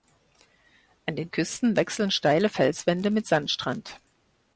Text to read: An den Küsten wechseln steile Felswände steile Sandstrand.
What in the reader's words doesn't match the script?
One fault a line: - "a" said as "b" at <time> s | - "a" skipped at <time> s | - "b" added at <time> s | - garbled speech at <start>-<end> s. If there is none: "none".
- "steile" said as "mit" at 3.1 s